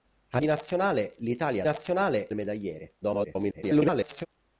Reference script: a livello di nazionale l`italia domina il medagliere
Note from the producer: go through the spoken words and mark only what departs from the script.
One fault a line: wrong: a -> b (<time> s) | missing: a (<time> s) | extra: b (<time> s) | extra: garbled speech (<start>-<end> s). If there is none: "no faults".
missing: livello (0.4 s)
wrong: domina -> nazionale (1.6 s)
extra: garbled speech (3.0-4.3 s)